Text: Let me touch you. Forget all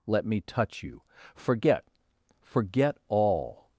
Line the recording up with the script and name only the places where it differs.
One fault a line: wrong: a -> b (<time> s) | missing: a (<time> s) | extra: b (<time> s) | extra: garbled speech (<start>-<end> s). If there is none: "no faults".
extra: Forget (2.4 s)